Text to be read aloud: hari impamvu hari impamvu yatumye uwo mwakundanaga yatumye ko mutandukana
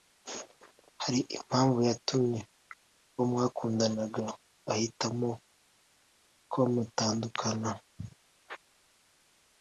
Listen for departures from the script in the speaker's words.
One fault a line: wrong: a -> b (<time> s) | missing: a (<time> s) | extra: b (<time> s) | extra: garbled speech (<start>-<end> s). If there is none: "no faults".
missing: hari impamvu (1.8 s)
wrong: yatumye -> ahitamo (4.7 s)